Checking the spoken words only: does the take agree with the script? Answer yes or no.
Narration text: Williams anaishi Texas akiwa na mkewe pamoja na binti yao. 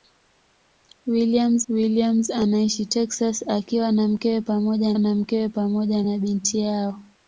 no